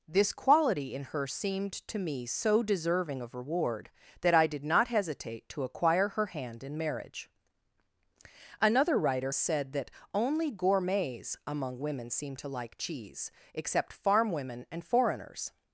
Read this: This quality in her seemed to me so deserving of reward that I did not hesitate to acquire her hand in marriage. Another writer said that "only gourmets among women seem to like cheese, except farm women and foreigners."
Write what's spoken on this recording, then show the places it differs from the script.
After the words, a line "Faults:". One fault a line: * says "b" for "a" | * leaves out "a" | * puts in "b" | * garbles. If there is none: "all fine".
This quality in her seemed to me so deserving of reward that I did not hesitate to acquire her hand in marriage. Another writer said that "only gourmets among women seem to like cheese, except farm women and foreigners."
Faults:
all fine